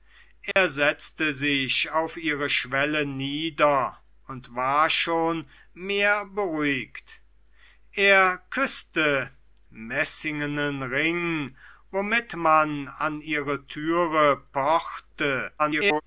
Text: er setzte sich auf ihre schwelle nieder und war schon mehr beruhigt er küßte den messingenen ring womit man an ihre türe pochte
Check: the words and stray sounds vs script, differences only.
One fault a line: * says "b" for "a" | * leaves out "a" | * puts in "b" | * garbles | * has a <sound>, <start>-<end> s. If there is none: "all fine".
* has a dropout, 0.5-0.6 s
* leaves out "den"
* garbles